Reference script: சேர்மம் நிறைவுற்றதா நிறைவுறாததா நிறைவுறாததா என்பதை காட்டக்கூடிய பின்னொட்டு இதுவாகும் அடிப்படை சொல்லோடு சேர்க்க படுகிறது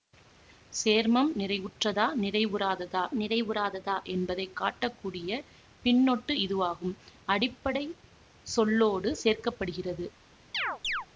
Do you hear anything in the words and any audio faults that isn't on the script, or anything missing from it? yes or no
yes